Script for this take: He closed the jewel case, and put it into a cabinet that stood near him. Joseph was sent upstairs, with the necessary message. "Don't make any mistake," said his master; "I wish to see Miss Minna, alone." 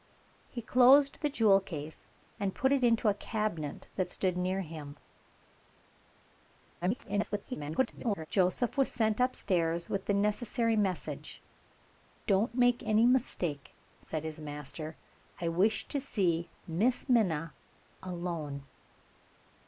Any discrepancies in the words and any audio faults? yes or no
yes